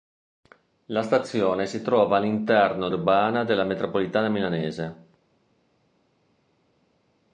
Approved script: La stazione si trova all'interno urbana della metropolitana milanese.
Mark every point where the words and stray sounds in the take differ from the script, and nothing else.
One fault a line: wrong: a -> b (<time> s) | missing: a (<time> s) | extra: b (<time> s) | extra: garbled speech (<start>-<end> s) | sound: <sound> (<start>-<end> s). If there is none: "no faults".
no faults